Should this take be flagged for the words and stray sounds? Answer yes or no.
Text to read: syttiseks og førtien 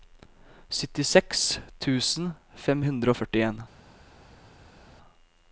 yes